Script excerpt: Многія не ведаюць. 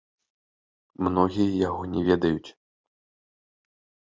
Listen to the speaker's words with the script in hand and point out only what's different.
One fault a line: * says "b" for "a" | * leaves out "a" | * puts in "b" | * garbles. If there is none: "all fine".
* puts in "яго"